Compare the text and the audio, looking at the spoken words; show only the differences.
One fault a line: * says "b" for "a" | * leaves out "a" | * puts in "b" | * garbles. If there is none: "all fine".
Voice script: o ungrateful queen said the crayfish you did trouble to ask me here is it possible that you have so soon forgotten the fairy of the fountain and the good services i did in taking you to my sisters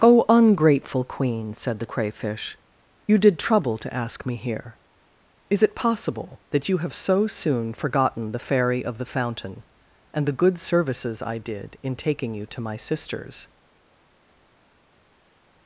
all fine